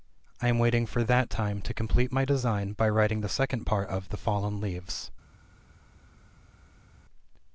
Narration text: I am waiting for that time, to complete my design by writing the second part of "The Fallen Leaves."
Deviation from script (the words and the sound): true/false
false